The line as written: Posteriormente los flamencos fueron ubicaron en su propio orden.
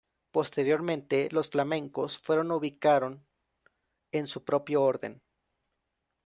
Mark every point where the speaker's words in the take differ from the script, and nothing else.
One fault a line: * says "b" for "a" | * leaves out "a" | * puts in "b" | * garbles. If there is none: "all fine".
all fine